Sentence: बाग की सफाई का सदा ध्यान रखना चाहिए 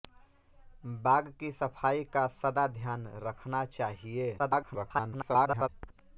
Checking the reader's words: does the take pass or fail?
fail